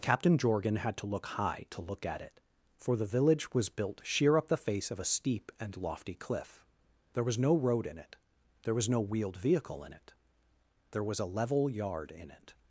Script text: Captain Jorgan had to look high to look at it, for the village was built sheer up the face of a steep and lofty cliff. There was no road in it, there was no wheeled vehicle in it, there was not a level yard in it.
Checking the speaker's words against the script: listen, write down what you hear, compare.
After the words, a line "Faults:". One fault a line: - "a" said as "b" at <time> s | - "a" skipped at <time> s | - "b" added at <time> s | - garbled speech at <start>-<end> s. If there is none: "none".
Captain Jorgan had to look high to look at it, for the village was built sheer up the face of a steep and lofty cliff. There was no road in it, there was no wheeled vehicle in it, there was a level yard in it.
Faults:
- "not" skipped at 11.2 s